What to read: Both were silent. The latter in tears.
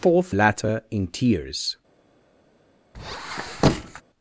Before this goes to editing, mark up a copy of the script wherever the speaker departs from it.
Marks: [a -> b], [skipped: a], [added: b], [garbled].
Both [skipped: were silent. The] latter in tears.